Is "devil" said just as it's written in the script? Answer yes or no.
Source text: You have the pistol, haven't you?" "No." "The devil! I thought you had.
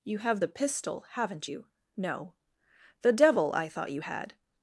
yes